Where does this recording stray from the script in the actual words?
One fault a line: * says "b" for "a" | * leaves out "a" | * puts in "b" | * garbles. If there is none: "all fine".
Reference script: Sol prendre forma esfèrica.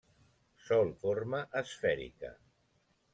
* leaves out "prendre"